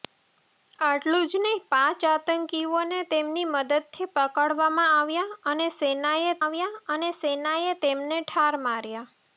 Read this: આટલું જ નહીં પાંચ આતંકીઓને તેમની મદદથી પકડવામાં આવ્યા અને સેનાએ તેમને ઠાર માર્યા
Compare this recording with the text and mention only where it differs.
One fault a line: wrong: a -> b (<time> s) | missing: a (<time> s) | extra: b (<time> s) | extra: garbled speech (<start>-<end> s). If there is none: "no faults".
extra: આવ્યા અને સેનાએ (6.4 s)